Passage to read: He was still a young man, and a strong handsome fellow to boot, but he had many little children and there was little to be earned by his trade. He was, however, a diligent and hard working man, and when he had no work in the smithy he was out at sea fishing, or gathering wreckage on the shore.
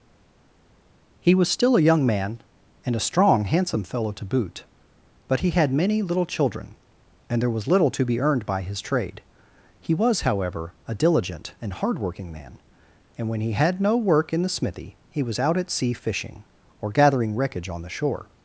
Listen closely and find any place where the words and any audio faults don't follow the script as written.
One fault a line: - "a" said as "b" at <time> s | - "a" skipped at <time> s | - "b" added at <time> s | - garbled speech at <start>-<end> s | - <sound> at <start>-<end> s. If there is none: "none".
none